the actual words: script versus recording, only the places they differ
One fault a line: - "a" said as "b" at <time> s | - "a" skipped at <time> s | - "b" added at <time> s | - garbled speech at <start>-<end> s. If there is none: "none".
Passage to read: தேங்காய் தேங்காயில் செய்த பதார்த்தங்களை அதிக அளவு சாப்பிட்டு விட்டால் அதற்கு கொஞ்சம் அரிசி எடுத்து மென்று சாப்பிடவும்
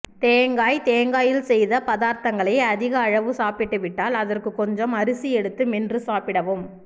none